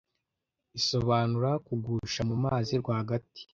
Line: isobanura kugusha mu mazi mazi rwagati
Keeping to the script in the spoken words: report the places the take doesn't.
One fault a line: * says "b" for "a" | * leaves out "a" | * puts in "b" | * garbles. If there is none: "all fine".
* leaves out "mazi"